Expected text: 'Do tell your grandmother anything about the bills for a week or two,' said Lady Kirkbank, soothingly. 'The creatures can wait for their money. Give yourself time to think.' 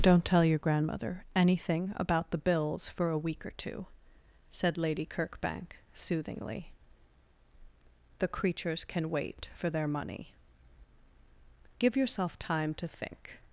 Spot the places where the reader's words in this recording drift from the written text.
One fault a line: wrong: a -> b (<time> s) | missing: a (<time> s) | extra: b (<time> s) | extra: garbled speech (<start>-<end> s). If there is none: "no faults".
wrong: Do -> Don't (0.0 s)